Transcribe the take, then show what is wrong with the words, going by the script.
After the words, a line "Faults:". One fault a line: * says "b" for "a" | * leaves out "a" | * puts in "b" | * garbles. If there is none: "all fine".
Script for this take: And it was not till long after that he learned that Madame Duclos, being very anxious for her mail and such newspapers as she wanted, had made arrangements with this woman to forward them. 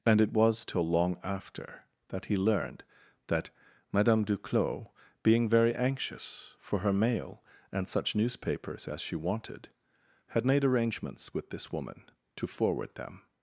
And it was till long after that he learned that Madame Duclos, being very anxious for her mail and such newspapers as she wanted, had made arrangements with this woman to forward them.
Faults:
* leaves out "not"